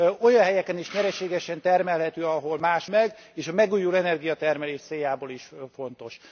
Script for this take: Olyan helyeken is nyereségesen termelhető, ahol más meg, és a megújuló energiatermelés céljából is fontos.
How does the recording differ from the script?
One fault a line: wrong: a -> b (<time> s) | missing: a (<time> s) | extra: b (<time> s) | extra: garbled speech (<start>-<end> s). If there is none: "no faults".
no faults